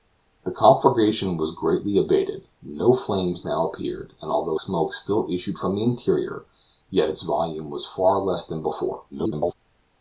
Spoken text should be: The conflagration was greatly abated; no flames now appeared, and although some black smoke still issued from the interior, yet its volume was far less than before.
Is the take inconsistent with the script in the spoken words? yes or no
yes